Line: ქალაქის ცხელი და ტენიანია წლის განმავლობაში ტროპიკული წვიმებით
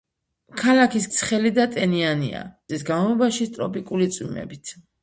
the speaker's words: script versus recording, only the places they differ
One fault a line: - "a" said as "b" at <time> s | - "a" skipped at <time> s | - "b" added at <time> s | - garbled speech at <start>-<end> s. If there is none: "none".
none